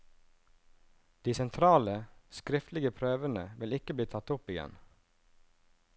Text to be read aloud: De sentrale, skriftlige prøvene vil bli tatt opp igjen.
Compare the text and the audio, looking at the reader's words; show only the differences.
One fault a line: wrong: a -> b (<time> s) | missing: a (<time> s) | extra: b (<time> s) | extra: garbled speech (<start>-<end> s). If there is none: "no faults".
extra: ikke (3.8 s)